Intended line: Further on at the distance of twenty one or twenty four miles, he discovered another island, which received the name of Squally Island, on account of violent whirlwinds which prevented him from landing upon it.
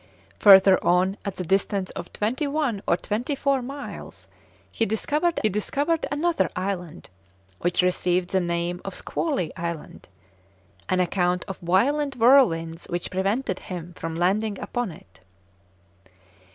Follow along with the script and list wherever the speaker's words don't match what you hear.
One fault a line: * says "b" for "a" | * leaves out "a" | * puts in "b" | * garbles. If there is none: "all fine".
* puts in "discovered"